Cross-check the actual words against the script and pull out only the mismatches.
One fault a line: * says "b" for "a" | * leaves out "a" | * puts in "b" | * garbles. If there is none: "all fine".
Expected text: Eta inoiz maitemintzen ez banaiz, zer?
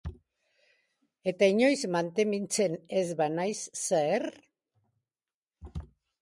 all fine